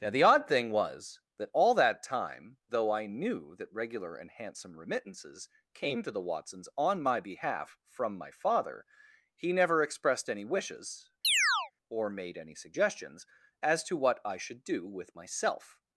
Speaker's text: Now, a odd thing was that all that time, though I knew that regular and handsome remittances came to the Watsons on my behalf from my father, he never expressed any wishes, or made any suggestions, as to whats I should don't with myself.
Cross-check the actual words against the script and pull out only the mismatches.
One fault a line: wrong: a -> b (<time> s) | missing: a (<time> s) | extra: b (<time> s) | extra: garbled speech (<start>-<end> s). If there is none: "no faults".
wrong: a -> the (0.1 s)
wrong: whats -> what (14.0 s)
wrong: don't -> do (14.6 s)